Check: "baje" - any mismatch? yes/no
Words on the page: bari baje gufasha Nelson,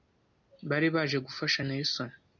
no